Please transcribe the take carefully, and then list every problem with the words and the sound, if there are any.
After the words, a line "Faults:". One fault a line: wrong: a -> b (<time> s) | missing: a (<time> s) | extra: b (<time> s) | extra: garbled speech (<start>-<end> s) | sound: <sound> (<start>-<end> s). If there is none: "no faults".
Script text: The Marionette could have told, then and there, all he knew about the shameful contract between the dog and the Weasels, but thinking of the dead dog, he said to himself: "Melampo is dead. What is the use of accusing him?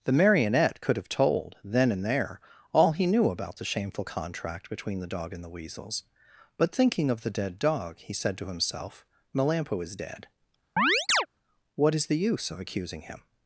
The Marionette could have told, then and there, all he knew about the shameful contract between the dog and the Weasels, but thinking of the dead dog, he said to himself: "Melampo is dead. What is the use of accusing him?
Faults:
sound: chirp (10.8-11.3 s)